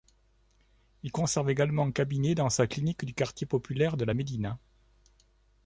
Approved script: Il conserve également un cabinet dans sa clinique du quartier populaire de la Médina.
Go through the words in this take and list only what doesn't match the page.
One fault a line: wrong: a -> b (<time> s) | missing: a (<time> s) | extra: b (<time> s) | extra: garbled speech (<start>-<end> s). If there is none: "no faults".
no faults